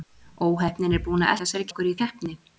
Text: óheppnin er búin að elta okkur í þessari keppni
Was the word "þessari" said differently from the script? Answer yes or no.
yes